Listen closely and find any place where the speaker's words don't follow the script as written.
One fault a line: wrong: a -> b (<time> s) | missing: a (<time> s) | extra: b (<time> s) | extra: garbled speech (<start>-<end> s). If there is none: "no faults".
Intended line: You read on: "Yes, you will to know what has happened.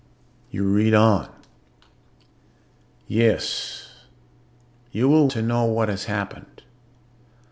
no faults